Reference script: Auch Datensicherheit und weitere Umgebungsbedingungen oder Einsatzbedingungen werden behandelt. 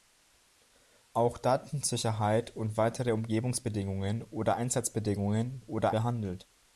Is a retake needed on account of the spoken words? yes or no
yes